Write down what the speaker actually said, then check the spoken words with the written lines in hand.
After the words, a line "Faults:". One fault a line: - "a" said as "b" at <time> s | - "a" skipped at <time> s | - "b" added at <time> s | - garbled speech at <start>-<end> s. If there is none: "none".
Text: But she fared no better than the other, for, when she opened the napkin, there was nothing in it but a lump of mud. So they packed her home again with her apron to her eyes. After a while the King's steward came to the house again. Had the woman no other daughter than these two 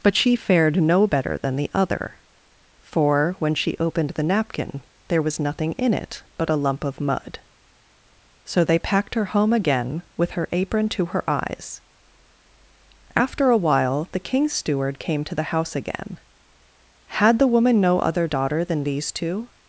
But she fared no better than the other, for, when she opened the napkin, there was nothing in it but a lump of mud. So they packed her home again with her apron to her eyes. After a while the King's steward came to the house again. Had the woman no other daughter than these two
Faults:
none